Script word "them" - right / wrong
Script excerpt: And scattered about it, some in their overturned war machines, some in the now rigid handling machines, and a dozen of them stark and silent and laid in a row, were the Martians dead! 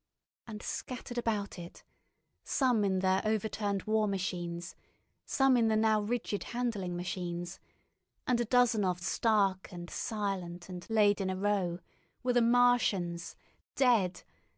wrong